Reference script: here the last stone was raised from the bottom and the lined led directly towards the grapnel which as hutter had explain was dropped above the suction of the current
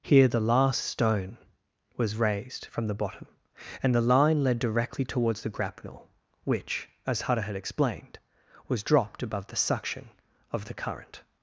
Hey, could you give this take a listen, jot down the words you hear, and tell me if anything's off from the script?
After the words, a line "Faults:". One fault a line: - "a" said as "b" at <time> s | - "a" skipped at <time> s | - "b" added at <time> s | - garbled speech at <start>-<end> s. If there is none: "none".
here the last stone was raised from the bottom and the line led directly towards the grapnel which as hutter had explained was dropped above the suction of the current
Faults:
- "lined" said as "line" at 4.0 s
- "explain" said as "explained" at 7.5 s